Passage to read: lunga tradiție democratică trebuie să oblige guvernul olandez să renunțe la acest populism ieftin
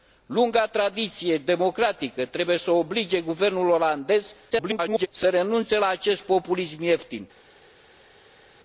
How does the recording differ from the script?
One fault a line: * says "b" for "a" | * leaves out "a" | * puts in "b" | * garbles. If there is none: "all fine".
* garbles